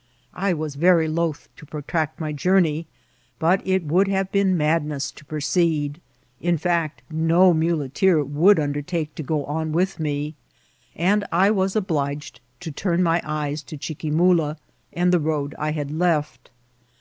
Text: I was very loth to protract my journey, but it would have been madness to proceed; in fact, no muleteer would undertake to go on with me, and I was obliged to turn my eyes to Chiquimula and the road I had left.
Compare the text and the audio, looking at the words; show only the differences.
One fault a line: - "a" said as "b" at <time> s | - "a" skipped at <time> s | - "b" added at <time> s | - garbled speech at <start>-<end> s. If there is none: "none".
none